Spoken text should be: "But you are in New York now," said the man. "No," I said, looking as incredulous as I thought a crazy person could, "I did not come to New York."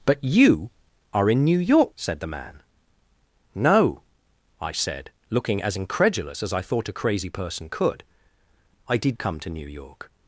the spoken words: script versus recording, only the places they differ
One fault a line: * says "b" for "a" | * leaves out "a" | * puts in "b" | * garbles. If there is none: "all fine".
* leaves out "now"
* leaves out "not"